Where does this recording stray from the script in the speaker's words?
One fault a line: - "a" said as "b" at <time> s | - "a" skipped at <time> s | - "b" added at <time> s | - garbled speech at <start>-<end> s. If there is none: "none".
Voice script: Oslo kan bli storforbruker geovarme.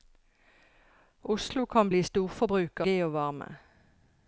none